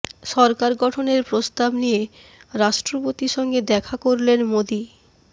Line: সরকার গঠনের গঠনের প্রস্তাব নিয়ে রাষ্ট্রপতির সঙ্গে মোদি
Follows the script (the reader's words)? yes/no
no